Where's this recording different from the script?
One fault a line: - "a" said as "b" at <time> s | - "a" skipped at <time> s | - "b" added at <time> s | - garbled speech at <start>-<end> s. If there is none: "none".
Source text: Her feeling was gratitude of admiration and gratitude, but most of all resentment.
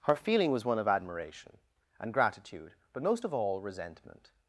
- "gratitude" said as "one" at 0.7 s